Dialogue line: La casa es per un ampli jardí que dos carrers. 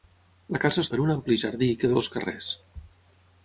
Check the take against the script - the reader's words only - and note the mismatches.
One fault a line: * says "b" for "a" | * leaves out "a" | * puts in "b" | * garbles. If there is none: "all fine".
all fine